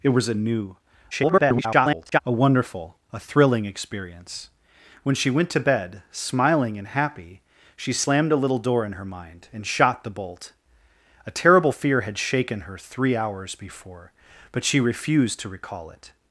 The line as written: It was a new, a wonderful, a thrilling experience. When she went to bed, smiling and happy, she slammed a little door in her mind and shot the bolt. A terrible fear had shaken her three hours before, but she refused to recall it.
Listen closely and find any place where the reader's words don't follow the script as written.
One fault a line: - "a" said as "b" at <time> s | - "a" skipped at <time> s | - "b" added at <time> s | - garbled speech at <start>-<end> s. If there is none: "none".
- garbled speech at 1.1-2.2 s